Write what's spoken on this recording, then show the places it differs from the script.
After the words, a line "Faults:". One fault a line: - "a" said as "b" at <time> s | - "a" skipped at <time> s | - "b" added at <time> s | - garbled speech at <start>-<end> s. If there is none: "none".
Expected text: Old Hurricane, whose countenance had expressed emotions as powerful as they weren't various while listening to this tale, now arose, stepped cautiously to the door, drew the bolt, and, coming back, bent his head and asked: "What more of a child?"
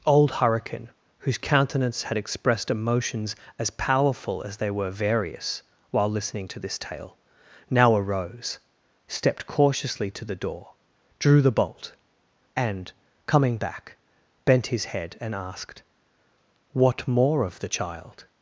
Old Hurricane, whose countenance had expressed emotions as powerful as they were various while listening to this tale, now arose, stepped cautiously to the door, drew the bolt, and, coming back, bent his head and asked: "What more of the child?"
Faults:
- "weren't" said as "were" at 4.7 s
- "a" said as "the" at 17.6 s